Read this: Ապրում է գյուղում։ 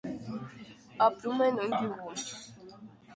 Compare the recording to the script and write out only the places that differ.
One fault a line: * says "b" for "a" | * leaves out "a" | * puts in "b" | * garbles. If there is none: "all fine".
* puts in "նույն"